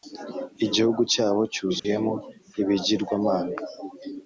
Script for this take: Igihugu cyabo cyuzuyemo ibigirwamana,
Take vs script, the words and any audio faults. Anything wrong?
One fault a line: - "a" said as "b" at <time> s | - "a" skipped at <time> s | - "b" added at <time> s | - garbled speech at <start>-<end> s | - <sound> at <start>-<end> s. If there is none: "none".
- dropout at 1.8-1.8 s